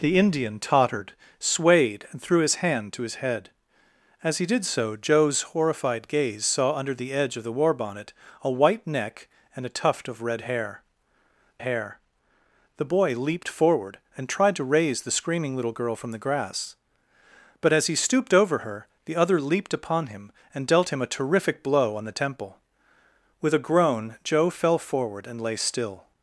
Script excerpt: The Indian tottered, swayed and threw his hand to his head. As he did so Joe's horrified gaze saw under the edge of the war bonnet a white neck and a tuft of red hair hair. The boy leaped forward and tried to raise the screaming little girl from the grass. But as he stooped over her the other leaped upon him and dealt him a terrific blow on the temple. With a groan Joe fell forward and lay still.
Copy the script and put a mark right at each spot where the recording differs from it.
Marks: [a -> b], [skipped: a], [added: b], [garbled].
The Indian tottered, swayed and threw his hand to his head. As he did so Joe's horrified gaze saw under the edge of the war bonnet a white neck and a tuft of red hair hair. The boy leaped forward and tried to raise the screaming little girl from the grass. But as he stooped over her the other leaped upon him and dealt him a terrific blow on the temple. With a groan Joe fell forward and lay still.